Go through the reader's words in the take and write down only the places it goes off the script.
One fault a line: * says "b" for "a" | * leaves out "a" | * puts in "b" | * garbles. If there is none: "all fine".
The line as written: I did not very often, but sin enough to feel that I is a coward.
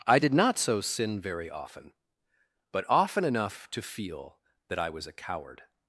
* puts in "so sin"
* says "often" for "sin"
* says "was" for "is"